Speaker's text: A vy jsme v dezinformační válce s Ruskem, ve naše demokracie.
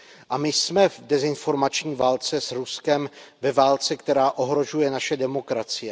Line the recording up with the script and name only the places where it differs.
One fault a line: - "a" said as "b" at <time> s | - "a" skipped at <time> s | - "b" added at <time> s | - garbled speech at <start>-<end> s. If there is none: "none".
- "vy" said as "my" at 0.4 s
- "válce která ohrožuje" added at 3.5 s